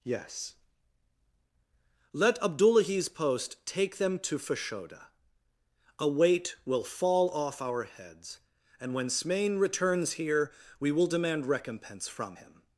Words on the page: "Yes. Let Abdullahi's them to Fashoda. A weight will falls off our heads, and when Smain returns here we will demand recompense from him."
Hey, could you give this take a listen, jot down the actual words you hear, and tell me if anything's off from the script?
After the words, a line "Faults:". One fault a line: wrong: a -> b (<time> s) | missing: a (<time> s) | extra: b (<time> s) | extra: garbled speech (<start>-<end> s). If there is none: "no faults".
"Yes. Let Abdullahi's post take them to Fashoda. A weight will fall off our heads, and when Smain returns here we will demand recompense from him."
Faults:
extra: post take (3.1 s)
wrong: falls -> fall (6.8 s)